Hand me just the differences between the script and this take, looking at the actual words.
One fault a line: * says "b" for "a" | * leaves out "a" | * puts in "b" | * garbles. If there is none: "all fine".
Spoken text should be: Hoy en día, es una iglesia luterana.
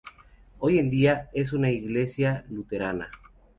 all fine